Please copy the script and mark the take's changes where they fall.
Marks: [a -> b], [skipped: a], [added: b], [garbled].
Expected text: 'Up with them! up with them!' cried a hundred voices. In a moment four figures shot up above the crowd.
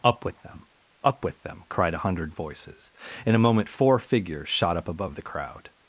'Up with them! up with them!' cried a hundred voices. In a moment four figures shot up above the crowd.